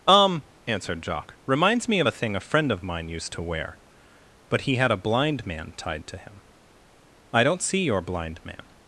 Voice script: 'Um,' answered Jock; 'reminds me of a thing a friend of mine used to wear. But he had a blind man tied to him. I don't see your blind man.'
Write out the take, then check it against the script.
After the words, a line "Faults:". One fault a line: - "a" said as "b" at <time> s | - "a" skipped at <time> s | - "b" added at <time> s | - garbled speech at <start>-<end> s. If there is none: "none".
'Um,' answered Jock; 'reminds me of a thing a friend of mine used to wear. But he had a blind man tied to him. I don't see your blind man.'
Faults:
none